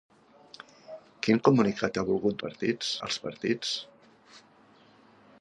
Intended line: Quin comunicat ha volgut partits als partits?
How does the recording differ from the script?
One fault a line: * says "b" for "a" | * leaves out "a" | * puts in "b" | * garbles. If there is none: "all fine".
all fine